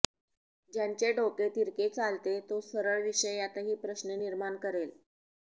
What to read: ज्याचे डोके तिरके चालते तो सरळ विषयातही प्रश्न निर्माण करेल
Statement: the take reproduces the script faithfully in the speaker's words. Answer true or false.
true